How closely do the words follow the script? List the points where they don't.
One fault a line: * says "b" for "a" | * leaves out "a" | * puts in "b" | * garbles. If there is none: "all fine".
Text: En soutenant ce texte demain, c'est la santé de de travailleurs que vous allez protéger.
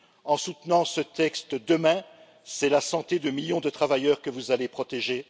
* puts in "millions"